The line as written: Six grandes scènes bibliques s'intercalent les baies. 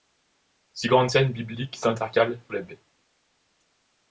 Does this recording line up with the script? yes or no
yes